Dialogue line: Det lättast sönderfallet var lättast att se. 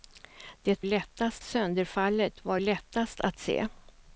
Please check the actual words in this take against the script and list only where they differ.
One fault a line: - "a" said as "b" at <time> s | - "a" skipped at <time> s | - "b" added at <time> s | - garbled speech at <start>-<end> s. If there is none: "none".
none